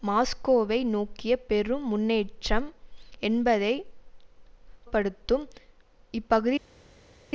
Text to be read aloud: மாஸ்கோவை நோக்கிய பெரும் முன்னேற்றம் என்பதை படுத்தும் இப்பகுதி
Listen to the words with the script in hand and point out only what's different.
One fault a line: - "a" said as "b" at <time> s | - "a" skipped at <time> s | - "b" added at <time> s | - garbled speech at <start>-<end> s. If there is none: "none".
none